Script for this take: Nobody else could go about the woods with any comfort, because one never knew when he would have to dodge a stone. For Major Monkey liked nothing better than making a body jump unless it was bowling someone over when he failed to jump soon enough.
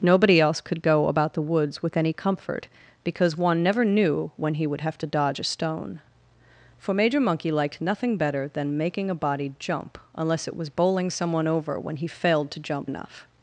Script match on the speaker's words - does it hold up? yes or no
no